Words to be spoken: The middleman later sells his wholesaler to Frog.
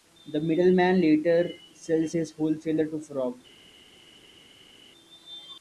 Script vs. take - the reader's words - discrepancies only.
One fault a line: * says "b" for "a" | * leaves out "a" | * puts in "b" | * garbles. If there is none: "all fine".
all fine